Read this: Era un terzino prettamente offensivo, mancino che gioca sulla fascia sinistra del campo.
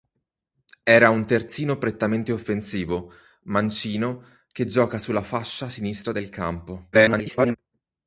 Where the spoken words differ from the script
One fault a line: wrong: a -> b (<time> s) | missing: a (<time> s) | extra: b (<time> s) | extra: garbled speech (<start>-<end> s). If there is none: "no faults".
extra: garbled speech (6.9-7.6 s)